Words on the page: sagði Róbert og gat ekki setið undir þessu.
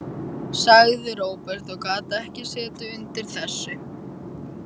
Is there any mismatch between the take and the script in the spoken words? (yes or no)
no